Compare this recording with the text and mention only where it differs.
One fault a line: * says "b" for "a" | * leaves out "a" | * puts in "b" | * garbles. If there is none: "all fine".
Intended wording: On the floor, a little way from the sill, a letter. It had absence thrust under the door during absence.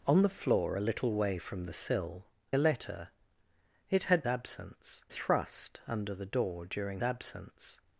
all fine